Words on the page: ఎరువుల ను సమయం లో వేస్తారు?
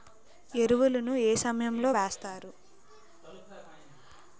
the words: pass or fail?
fail